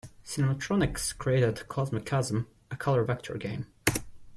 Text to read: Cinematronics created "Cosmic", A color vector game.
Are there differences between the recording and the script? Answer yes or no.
yes